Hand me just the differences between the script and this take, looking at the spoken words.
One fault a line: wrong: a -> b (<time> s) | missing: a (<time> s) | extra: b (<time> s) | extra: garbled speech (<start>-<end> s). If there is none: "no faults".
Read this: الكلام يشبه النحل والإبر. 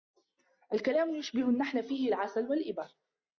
extra: فيه العسل (1.8 s)